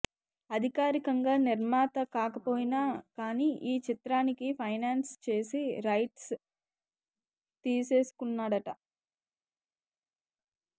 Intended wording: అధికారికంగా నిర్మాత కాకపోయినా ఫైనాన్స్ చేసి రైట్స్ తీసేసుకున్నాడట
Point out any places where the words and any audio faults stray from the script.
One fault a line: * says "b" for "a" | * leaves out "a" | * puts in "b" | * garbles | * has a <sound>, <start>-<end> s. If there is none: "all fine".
* puts in "కానీ ఈ చిత్రానికి"